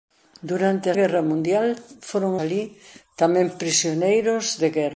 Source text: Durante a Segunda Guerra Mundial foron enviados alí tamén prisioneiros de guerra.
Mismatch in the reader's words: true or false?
true